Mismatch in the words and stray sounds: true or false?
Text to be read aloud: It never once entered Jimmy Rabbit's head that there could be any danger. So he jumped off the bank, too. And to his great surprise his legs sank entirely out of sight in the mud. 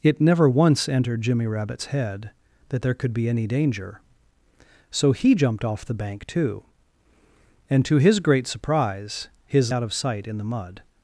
true